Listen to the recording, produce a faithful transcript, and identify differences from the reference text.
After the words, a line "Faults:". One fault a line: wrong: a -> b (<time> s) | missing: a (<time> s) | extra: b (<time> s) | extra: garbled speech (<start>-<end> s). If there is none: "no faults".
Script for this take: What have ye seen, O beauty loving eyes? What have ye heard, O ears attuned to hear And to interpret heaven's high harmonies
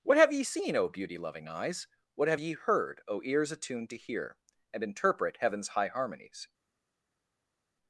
What have ye seen, O beauty loving eyes? What have ye heard, O ears attuned to hear And interpret heaven's high harmonies
Faults:
missing: to (4.8 s)